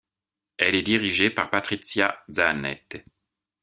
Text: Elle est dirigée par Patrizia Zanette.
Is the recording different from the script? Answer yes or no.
no